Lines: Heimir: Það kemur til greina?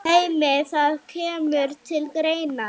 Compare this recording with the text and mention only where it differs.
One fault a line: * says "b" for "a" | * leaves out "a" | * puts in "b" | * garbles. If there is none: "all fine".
all fine